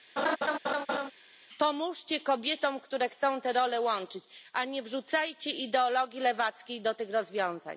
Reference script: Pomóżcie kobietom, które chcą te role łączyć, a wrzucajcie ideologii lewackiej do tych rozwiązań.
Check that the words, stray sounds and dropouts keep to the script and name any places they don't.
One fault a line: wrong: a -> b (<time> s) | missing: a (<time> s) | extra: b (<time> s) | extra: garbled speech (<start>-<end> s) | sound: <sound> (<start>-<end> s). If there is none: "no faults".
sound: laugh (0.2-1.1 s)
extra: nie (4.6 s)